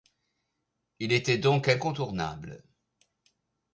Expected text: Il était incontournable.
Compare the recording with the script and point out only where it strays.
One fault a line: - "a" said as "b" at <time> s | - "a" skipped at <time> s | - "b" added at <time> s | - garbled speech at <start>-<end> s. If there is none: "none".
- "donc" added at 1.4 s